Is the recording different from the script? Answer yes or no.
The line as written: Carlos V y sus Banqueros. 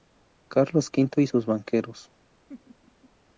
no